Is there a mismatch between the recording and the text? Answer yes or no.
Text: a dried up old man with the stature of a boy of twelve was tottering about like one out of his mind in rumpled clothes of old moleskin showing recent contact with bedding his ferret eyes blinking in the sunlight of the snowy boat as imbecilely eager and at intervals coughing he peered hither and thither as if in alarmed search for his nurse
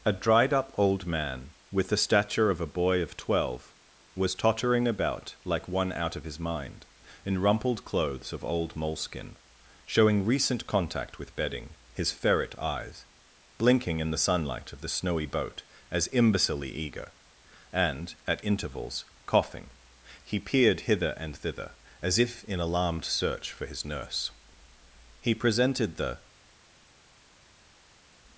yes